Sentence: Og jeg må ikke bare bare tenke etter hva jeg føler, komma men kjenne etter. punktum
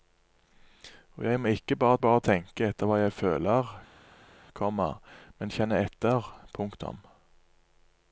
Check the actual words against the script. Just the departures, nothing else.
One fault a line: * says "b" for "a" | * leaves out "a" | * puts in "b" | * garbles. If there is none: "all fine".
all fine